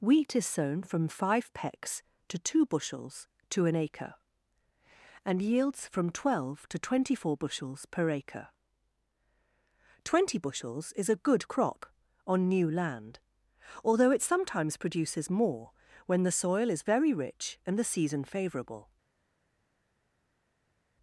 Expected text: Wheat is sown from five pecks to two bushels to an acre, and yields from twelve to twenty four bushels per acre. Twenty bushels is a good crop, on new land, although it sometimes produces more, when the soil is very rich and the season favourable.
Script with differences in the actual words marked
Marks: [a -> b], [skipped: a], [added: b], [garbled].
Wheat is sown from five pecks to two bushels to an acre, and yields from twelve to twenty four bushels per acre. Twenty bushels is a good crop, on new land, although it sometimes produces more, when the soil is very rich and the season favourable.